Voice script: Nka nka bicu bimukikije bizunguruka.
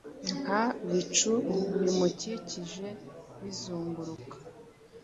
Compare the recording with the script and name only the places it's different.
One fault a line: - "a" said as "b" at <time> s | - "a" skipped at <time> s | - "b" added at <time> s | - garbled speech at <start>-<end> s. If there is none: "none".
- "nka" skipped at 0.6 s